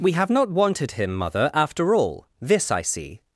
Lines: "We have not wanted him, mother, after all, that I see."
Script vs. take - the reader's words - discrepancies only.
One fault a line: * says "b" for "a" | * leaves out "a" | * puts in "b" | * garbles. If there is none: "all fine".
* says "this" for "that"